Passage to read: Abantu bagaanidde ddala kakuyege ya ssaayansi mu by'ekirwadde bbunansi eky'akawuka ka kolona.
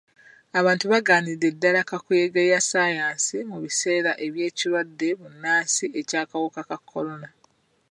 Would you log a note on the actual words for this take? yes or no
yes